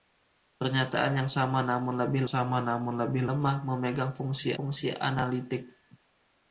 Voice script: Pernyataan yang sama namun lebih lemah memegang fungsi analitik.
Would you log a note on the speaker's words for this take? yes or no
yes